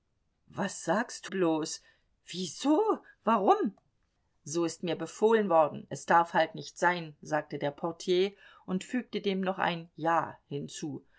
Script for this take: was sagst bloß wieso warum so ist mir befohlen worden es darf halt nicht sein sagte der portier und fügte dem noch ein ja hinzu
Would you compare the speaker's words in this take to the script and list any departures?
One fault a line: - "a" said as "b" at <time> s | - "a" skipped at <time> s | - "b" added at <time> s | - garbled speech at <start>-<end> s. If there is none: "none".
none